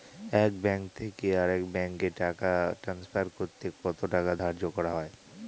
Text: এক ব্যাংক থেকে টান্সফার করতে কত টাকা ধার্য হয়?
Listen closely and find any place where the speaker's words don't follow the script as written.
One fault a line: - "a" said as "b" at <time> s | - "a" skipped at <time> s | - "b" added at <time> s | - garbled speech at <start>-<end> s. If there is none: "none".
- "আরেক ব্যাংকে টাকা" added at 1.4 s
- "করা" added at 4.8 s